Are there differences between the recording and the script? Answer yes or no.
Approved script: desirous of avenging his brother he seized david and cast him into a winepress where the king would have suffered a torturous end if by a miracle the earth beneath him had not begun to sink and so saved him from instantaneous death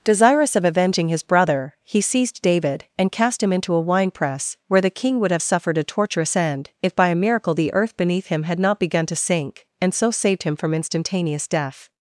no